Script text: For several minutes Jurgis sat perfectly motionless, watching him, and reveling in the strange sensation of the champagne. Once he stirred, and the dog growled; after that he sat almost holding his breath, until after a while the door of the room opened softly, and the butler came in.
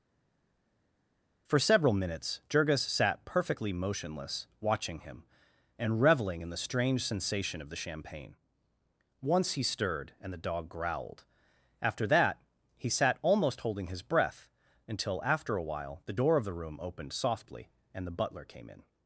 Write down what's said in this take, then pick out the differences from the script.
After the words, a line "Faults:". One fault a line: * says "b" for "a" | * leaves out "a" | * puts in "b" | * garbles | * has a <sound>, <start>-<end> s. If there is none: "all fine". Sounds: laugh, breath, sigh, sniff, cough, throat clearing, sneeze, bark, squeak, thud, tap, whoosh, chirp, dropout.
For several minutes Jurgis sat perfectly motionless, watching him, and reveling in the strange sensation of the champagne. Once he stirred, and the dog growled; after that he sat almost holding his breath, until after a while the door of the room opened softly, and the butler came in.
Faults:
all fine